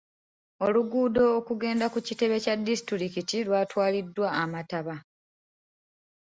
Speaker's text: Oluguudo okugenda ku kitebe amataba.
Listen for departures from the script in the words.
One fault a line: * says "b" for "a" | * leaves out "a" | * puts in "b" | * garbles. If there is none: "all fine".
* puts in "kya disitulikiti lwatwaliddwa"